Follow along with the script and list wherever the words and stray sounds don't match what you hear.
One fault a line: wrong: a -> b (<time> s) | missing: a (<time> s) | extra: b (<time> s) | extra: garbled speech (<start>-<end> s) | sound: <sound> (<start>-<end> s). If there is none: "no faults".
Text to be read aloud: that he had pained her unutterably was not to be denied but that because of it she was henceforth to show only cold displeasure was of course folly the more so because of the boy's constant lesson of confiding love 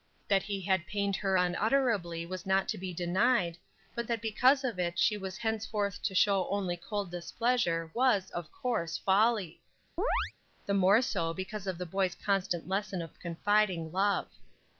sound: chirp (10.0-10.3 s)